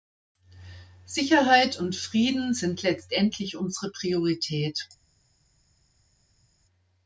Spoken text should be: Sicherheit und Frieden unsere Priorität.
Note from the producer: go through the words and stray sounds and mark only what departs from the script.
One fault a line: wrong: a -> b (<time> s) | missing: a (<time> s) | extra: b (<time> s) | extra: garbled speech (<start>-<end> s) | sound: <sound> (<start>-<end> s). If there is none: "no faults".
extra: sind letztendlich (2.5 s)